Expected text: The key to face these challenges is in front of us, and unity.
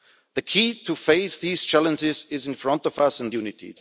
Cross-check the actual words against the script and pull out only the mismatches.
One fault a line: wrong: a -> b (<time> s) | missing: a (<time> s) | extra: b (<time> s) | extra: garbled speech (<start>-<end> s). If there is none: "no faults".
no faults